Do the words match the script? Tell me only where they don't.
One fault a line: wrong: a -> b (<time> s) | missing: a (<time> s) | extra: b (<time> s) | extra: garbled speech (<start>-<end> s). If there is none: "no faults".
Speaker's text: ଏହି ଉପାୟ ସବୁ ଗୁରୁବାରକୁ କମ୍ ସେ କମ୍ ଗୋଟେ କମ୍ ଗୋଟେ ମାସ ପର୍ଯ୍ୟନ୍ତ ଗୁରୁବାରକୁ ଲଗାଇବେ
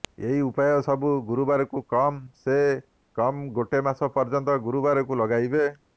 missing: କମ୍ ଗୋଟେ (3.8 s)